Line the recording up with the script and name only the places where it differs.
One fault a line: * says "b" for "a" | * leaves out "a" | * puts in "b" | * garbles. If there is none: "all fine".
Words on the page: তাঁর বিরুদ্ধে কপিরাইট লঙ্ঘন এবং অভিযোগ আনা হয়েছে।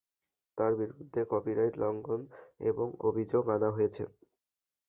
all fine